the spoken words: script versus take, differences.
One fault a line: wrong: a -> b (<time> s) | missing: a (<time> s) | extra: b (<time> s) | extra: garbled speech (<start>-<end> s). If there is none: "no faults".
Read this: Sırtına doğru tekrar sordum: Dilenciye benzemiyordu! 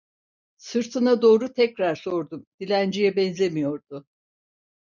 no faults